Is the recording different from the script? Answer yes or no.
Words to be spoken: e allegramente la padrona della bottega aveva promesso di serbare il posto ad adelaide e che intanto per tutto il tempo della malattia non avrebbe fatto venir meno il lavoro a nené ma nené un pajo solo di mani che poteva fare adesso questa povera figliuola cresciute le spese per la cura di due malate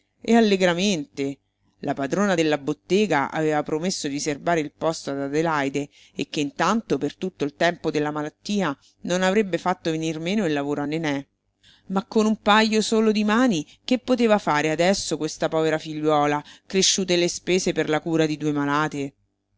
yes